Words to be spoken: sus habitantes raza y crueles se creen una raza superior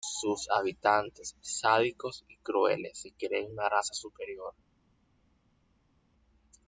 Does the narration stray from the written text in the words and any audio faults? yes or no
yes